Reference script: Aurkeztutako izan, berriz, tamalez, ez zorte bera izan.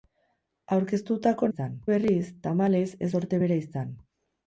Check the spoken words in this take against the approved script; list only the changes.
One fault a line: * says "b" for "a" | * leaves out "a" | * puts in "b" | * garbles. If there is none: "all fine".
all fine